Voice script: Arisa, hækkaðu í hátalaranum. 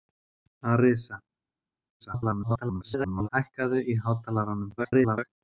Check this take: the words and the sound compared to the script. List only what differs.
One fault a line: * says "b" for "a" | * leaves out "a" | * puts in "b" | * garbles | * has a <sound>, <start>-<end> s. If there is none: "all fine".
* garbles
* garbles